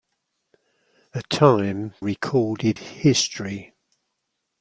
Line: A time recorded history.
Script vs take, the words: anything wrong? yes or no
no